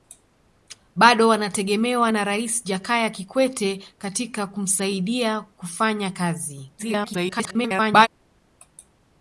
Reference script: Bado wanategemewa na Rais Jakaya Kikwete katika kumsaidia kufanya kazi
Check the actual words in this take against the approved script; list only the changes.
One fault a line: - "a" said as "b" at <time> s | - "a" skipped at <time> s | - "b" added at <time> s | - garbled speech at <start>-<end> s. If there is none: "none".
- garbled speech at 6.8-8.1 s